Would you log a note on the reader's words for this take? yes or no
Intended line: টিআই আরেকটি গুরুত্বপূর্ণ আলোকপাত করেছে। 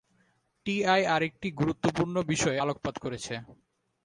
yes